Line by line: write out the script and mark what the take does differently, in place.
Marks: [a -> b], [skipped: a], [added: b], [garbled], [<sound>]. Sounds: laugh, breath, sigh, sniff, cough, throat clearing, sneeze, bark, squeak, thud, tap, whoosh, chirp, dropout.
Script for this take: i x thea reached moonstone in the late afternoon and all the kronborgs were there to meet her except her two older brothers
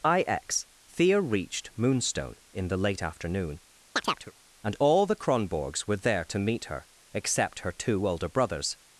i x thea reached moonstone in the late afternoon [chirp] and all the kronborgs were there to meet her except her two older brothers